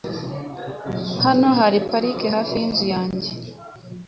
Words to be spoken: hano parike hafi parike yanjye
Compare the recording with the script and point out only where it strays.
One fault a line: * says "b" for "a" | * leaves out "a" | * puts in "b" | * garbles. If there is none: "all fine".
* puts in "hari"
* says "yinzu" for "parike"